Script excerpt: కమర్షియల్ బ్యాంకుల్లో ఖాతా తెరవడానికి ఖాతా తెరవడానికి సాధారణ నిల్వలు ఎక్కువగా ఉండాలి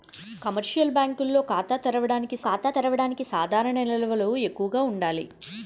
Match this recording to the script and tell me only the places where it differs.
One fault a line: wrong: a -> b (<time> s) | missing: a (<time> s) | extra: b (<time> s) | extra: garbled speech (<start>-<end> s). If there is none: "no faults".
no faults